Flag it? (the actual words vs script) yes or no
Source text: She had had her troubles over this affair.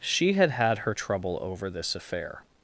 yes